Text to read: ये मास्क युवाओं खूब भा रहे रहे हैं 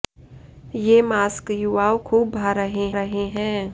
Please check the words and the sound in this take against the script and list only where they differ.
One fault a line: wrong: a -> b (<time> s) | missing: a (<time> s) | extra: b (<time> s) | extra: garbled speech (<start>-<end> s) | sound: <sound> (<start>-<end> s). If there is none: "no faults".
no faults